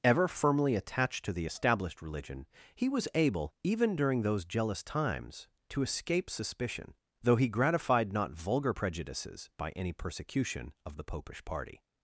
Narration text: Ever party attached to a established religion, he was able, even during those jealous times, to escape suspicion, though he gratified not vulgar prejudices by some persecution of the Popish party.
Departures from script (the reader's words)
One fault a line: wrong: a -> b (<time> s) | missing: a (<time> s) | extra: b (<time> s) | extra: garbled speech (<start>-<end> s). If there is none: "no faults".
wrong: party -> firmly (0.3 s)
wrong: a -> the (1.3 s)
wrong: some -> any (9.7 s)